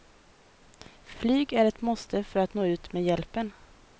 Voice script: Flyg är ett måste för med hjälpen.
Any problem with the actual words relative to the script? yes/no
yes